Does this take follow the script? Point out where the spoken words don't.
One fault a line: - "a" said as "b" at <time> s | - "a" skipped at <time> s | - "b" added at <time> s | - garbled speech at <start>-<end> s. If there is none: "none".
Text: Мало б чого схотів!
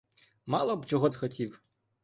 none